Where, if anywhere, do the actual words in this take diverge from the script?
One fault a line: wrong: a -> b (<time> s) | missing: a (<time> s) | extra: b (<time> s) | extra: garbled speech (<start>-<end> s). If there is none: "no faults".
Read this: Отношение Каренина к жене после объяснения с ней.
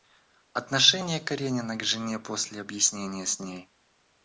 no faults